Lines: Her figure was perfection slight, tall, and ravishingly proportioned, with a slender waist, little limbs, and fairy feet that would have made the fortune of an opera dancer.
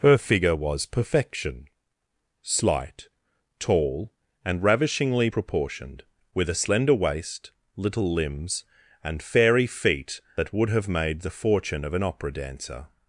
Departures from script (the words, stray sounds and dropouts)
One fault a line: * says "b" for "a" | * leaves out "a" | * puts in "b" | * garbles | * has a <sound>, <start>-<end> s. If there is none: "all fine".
all fine